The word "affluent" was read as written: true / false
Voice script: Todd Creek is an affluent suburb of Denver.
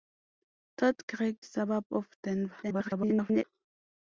false